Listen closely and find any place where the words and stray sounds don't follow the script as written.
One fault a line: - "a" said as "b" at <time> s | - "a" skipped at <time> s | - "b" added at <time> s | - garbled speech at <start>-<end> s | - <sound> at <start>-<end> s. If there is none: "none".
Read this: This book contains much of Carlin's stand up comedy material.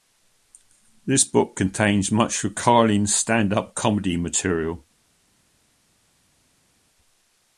none